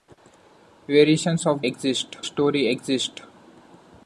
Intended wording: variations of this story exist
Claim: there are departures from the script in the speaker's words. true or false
true